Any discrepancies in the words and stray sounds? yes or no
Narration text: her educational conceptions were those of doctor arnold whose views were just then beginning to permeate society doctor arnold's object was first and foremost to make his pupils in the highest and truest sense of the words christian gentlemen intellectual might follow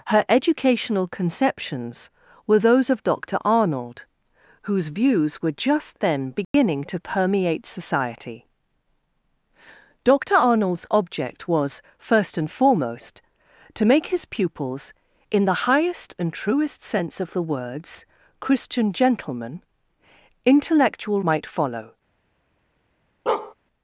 yes